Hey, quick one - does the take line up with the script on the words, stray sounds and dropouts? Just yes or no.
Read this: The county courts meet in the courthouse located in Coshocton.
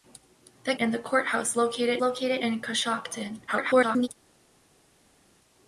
no